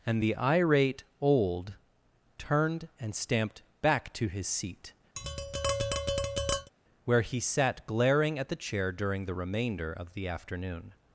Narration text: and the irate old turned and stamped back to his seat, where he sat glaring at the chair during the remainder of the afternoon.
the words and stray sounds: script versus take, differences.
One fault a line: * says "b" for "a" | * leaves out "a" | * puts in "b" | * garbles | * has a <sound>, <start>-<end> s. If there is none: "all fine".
* has a tap, 5.2-6.7 s